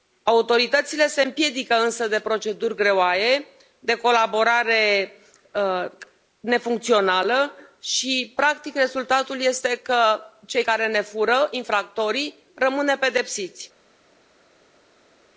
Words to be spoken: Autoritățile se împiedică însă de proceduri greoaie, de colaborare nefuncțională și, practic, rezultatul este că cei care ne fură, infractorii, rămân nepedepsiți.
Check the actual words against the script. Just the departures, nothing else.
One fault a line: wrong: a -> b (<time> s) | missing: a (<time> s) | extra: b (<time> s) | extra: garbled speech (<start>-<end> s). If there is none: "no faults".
no faults